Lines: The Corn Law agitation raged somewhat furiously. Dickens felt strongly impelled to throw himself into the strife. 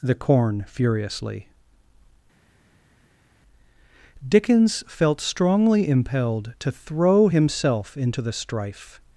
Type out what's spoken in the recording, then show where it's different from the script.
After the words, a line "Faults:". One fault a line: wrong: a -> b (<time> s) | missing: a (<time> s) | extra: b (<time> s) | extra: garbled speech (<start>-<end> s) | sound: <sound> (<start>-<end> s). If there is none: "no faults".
The Corn furiously. Dickens felt strongly impelled to throw himself into the strife.
Faults:
missing: Law agitation raged somewhat (0.7 s)